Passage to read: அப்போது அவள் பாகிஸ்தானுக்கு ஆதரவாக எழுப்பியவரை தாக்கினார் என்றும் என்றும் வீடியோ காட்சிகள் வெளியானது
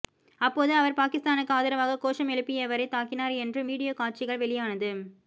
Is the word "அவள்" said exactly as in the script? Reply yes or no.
no